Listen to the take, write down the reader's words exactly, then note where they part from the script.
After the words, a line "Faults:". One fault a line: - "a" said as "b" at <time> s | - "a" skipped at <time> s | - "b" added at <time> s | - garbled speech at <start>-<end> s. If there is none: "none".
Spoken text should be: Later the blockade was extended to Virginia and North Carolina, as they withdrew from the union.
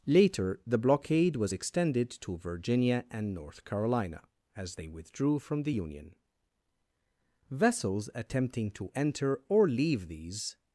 Later the blockade was extended to Virginia and North Carolina, as they withdrew from the union. Vessels attempting to enter or leave these
Faults:
- "Vessels attempting to enter or leave these" added at 7.5 s